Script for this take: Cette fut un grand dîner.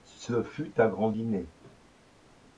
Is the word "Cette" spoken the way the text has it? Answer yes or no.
no